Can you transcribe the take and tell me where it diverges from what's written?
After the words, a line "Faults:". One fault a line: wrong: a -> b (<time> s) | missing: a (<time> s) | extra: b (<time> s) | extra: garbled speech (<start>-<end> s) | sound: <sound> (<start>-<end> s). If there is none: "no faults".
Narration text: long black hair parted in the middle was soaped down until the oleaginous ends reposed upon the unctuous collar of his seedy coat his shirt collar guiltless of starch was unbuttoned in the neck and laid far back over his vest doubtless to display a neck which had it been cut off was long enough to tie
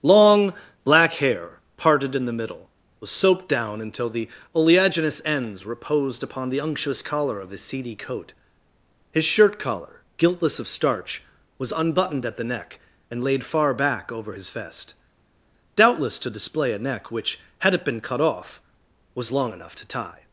long black hair parted in the middle was soaped down until the oleaginous ends reposed upon the unctuous collar of his seedy coat his shirt collar guiltless of starch was unbuttoned at the neck and laid far back over his vest doubtless to display a neck which had it been cut off was long enough to tie
Faults:
wrong: in -> at (12.2 s)